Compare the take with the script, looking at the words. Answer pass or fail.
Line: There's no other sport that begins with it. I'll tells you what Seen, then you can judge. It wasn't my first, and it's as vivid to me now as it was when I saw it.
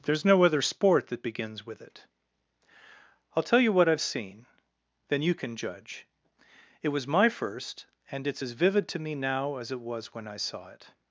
fail